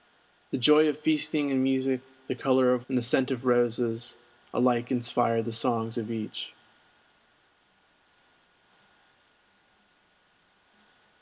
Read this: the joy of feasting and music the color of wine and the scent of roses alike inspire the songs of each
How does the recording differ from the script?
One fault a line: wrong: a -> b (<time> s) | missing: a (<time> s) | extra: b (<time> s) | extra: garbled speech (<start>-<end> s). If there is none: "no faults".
missing: wine (2.9 s)